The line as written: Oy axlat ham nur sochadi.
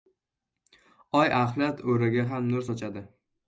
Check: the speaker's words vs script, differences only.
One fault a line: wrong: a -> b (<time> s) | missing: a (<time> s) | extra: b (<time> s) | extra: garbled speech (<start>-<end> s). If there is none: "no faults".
extra: o‘raga (2.0 s)